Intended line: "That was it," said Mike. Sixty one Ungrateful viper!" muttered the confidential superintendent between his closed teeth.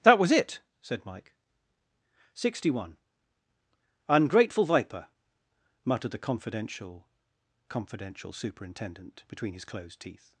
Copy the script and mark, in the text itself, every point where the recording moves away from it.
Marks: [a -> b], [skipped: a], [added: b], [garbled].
"That was it," said Mike. Sixty one Ungrateful viper!" muttered the confidential [added: confidential] superintendent between his closed teeth.